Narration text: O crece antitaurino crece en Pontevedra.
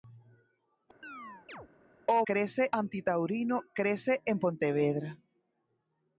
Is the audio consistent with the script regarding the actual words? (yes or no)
yes